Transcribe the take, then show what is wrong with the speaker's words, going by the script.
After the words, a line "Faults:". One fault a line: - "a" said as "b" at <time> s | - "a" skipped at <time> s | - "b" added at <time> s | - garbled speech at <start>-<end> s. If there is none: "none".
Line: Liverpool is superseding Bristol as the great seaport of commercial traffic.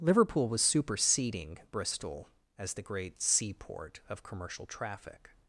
Liverpool was superseding Bristol as the great seaport of commercial traffic.
Faults:
- "is" said as "was" at 0.5 s